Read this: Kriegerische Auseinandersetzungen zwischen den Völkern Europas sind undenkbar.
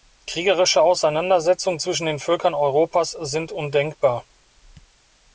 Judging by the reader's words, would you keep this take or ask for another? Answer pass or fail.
pass